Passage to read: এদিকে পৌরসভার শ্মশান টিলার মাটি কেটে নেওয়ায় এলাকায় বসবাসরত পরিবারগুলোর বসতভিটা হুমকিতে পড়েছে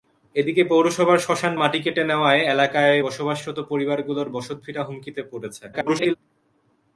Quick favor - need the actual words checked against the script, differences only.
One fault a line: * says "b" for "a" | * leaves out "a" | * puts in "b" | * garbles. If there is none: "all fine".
* leaves out "টিলার"
* garbles